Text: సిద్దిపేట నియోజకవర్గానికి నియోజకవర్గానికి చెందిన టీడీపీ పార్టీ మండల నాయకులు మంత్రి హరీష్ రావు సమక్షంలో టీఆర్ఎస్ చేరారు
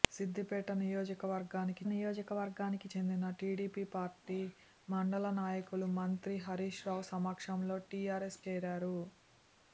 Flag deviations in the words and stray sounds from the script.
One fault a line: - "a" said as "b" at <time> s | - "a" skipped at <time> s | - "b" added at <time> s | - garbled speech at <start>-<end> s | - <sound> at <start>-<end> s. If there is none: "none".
none